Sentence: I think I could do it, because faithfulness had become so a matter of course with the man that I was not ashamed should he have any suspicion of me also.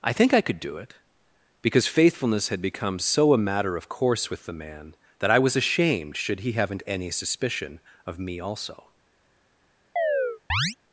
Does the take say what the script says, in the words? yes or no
no